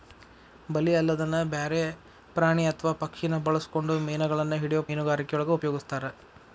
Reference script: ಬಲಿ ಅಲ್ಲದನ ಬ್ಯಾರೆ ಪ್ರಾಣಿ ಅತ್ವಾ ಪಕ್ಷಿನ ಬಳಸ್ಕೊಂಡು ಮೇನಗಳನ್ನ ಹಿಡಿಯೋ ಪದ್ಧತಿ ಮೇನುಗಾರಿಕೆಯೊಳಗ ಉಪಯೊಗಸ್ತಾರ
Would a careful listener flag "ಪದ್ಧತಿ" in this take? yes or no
yes